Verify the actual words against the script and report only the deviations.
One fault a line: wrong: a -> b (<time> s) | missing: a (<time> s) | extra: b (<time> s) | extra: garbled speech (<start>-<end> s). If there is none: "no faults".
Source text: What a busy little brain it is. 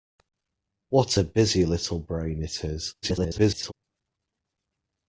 extra: garbled speech (3.0-3.7 s)